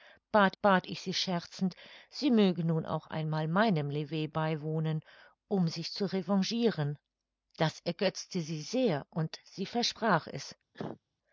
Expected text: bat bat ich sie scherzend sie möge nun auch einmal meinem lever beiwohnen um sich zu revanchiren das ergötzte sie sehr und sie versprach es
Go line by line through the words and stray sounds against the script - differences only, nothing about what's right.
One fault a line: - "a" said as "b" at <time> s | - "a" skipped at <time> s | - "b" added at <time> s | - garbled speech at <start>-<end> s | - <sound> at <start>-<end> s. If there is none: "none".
- cough at 10.7-11.0 s